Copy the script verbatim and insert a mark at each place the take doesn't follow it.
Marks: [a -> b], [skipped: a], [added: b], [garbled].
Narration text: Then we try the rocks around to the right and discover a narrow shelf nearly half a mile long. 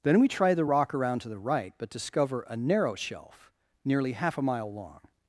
Then we try the [rocks -> rock] around to the right [and -> but] discover a narrow shelf nearly half a mile long.